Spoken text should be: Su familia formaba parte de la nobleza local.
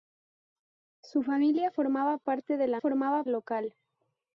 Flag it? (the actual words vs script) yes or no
yes